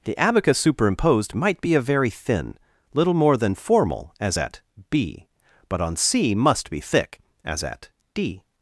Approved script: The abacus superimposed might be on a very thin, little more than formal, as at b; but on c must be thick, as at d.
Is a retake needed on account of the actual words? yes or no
yes